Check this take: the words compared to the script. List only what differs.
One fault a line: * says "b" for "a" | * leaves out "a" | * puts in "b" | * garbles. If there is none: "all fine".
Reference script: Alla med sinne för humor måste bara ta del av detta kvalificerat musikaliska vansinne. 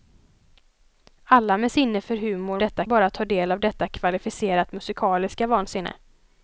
* says "detta" for "måste"